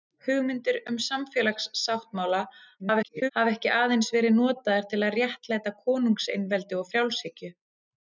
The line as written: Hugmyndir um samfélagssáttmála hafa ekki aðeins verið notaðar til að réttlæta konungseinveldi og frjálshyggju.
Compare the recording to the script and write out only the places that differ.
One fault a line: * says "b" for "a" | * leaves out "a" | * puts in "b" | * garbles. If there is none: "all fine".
* garbles